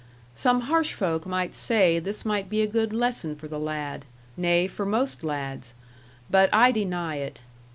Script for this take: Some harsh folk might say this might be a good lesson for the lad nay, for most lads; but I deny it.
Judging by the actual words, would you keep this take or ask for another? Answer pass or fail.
pass